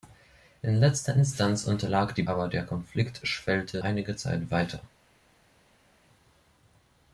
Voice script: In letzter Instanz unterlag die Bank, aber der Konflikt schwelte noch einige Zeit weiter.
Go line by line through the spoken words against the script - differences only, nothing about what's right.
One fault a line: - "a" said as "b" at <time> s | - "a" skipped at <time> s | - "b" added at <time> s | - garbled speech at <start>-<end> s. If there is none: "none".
- "Bank" skipped at 2.2 s
- "noch" skipped at 3.8 s